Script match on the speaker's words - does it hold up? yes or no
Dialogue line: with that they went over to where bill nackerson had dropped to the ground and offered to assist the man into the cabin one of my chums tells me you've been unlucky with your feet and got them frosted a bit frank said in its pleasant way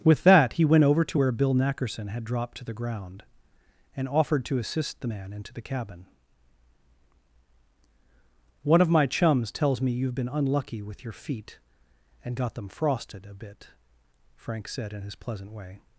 no